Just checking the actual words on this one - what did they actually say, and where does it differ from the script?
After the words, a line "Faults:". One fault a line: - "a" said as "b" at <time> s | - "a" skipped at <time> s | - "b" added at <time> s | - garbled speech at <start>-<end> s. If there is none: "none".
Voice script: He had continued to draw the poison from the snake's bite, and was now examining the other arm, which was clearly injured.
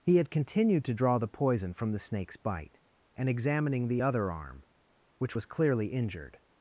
He had continued to draw the poison from the snake's bite, and examining the other arm, which was clearly injured.
Faults:
- "was now" skipped at 3.3 s